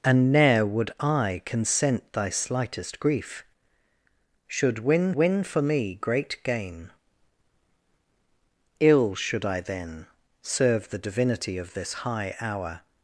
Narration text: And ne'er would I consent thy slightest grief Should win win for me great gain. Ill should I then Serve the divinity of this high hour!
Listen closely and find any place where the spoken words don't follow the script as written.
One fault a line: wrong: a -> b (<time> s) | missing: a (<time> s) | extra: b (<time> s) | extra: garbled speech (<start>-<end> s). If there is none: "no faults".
no faults